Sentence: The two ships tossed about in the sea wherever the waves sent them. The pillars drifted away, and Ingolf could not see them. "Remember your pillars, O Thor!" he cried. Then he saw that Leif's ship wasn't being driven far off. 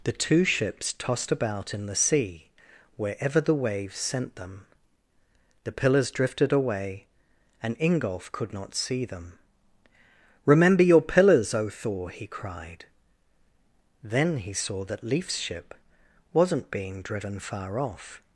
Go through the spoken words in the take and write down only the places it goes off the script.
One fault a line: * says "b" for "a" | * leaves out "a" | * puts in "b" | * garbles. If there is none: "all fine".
all fine